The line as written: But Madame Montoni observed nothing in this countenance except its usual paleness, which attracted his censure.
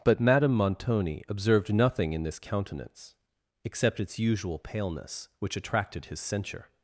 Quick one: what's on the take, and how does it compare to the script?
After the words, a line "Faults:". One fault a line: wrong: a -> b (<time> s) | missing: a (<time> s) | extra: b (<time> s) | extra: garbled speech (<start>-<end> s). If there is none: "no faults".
But Madame Montoni observed nothing in this countenance except its usual paleness, which attracted his censure.
Faults:
no faults